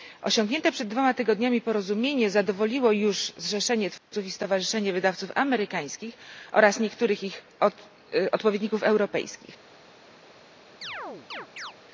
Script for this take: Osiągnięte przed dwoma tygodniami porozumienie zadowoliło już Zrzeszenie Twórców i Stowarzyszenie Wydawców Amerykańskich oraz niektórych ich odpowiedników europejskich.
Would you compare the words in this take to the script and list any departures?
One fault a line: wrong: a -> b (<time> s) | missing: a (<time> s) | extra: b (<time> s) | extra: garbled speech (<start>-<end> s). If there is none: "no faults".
no faults